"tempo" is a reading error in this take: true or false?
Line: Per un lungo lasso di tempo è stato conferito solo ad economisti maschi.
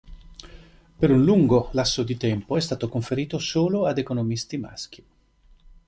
false